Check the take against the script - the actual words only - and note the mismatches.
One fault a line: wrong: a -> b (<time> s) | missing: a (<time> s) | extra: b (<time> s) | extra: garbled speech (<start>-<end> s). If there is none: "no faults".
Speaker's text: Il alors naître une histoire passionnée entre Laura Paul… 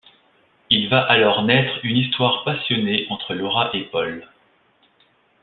extra: va (0.9 s)
extra: et (3.7 s)